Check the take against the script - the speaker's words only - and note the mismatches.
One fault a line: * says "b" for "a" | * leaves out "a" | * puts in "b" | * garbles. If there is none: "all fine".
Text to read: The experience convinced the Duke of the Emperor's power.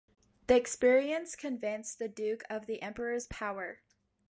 all fine